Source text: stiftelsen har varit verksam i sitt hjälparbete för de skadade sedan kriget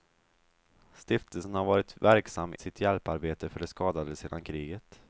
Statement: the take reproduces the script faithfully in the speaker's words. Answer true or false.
false